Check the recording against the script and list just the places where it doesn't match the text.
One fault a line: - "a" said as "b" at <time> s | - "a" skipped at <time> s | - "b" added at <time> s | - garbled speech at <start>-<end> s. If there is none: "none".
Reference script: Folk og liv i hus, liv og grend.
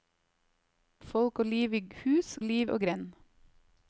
none